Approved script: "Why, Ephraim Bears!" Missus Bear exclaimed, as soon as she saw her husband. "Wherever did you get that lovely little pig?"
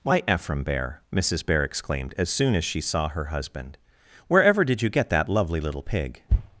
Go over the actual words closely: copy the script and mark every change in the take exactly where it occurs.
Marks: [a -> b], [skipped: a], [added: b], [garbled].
"Why, Ephraim [Bears!" -> Bear] Missus Bear exclaimed, as soon as she saw her husband. "Wherever did you get that lovely little pig?"